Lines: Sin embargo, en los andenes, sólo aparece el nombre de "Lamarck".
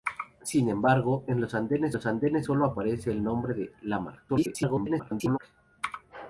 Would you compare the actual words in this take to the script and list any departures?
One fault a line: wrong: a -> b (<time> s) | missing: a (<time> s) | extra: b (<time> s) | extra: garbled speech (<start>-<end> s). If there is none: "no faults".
extra: los andenes (1.9 s)
extra: garbled speech (4.3-5.4 s)